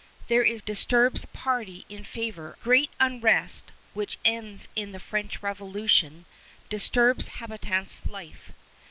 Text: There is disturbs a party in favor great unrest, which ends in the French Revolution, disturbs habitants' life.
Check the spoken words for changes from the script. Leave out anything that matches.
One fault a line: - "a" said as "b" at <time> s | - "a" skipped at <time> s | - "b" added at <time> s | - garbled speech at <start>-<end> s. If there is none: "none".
none